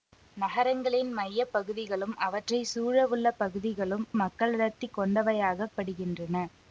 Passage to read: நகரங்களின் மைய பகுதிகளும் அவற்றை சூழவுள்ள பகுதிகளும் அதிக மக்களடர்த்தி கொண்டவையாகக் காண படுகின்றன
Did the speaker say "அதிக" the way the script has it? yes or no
no